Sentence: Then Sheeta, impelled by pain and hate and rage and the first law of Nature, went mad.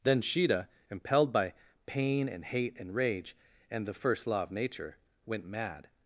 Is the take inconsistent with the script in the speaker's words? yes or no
no